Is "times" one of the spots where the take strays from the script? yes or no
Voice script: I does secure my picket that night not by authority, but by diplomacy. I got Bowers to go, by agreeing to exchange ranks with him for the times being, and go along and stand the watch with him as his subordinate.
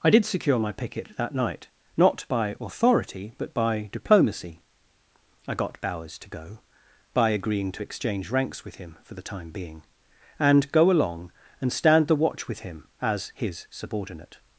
yes